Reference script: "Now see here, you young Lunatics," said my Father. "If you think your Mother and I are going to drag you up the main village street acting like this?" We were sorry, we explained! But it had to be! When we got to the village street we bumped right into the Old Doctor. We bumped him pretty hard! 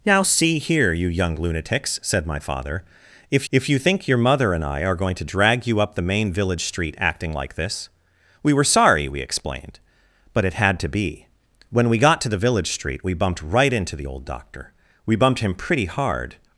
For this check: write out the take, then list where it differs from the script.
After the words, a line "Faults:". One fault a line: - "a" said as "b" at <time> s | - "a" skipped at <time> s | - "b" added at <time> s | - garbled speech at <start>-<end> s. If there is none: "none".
"Now see here, you young Lunatics," said my Father. "If if you think your Mother and I are going to drag you up the main village street acting like this?" We were sorry, we explained! But it had to be! When we got to the village street we bumped right into the Old Doctor. We bumped him pretty hard!
Faults:
- "if" added at 3.5 s